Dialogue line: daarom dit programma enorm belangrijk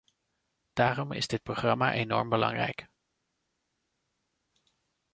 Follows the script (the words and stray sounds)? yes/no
no